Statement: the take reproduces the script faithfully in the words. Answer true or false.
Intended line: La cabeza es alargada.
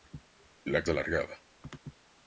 false